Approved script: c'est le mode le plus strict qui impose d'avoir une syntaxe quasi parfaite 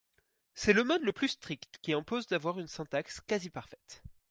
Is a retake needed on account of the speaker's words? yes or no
no